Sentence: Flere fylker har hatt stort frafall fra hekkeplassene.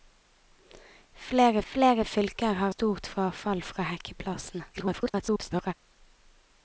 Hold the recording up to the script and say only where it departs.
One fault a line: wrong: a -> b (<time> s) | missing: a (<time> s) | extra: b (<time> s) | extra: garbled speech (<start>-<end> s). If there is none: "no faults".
extra: flere (1.7 s)
missing: hatt (2.7 s)
extra: garbled speech (4.7-5.7 s)